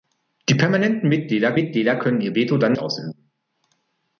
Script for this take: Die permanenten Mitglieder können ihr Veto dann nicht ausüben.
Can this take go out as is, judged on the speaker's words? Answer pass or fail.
fail